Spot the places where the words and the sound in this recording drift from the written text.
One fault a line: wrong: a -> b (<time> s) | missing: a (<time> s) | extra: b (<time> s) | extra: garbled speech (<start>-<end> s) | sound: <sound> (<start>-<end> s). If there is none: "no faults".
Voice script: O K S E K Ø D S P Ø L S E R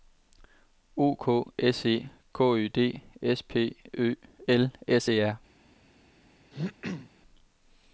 sound: throat clearing (6.5-7.1 s)